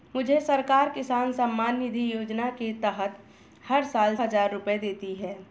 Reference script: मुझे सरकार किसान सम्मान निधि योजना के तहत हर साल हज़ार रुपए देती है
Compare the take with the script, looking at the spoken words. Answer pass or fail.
pass